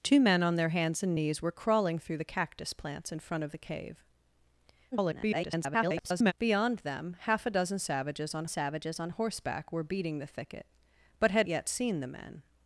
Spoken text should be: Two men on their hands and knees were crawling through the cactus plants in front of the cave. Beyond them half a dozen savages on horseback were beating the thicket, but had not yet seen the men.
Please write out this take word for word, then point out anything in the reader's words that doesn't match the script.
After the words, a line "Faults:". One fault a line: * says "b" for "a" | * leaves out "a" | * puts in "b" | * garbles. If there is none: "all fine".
Two men on their hands and knees were crawling through the cactus plants in front of the cave. [garbled] Beyond them half a dozen savages on savages on horseback were beating the thicket, but had yet seen the men.
Faults:
* garbles
* puts in "savages on"
* leaves out "not"